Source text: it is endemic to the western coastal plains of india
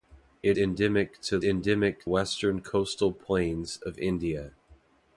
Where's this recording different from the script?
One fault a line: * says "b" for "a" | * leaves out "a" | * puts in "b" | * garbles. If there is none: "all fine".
* leaves out "is"
* says "endemic" for "the"